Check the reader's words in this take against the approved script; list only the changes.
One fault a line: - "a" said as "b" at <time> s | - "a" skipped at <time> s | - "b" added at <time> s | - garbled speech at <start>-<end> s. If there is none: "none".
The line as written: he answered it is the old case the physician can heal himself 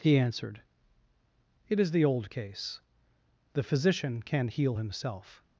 none